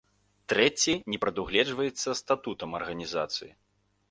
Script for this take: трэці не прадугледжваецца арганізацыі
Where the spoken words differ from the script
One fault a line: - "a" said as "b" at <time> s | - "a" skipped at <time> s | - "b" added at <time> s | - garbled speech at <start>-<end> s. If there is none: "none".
- "статутам" added at 2.2 s